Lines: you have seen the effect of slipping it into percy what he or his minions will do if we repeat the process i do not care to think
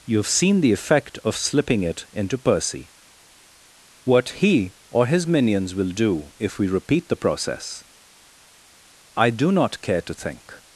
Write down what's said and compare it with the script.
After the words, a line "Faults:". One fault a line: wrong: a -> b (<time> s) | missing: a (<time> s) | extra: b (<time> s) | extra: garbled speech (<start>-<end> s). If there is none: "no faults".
you have seen the effect of slipping it into percy what he or his minions will do if we repeat the process i do not care to think
Faults:
no faults